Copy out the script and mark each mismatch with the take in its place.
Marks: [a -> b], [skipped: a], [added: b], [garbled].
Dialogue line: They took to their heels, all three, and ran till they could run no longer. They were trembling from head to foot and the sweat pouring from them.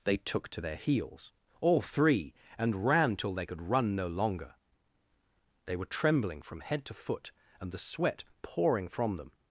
They took to their heels, all three, and ran till they could run no longer. They were trembling from head to foot and the sweat pouring from them.